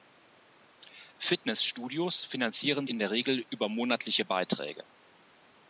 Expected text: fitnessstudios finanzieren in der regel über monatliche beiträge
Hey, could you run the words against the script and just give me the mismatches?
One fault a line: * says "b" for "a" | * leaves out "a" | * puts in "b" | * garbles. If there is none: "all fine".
all fine